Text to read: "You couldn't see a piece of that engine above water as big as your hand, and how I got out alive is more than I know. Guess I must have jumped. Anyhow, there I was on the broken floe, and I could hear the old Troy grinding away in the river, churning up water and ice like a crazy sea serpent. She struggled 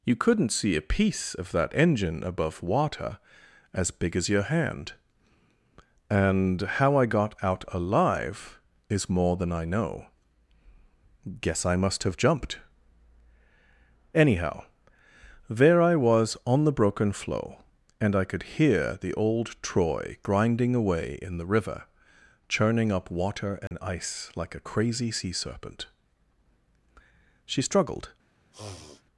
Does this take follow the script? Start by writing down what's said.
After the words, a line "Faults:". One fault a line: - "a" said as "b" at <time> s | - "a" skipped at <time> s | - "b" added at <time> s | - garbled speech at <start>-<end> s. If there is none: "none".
"You couldn't see a piece of that engine above water as big as your hand, and how I got out alive is more than I know. Guess I must have jumped. Anyhow, there I was on the broken floe, and I could hear the old Troy grinding away in the river, churning up water and ice like a crazy sea serpent. She struggled
Faults:
none